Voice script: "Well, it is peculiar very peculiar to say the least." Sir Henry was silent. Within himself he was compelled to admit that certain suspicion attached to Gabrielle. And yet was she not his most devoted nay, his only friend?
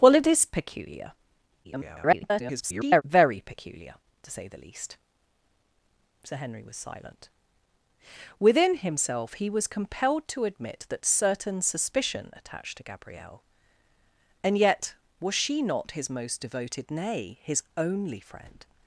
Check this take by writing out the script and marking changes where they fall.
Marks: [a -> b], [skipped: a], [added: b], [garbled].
"Well, it is peculiar [garbled] very peculiar to say the least." Sir Henry was silent. Within himself he was compelled to admit that certain suspicion attached to Gabrielle. And yet was she not his most devoted nay, his only friend?